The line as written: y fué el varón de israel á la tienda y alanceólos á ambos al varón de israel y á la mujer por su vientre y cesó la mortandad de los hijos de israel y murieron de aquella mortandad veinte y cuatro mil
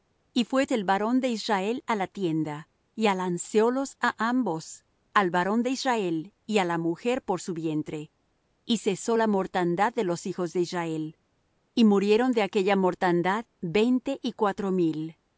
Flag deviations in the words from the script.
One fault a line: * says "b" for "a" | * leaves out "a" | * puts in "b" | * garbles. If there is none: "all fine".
all fine